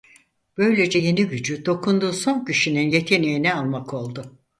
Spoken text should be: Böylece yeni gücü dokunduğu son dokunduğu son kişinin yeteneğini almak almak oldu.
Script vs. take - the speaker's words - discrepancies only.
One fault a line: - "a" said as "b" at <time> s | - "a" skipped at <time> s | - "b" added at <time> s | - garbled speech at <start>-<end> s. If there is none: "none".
- "dokunduğu son" skipped at 2.4 s
- "almak" skipped at 3.9 s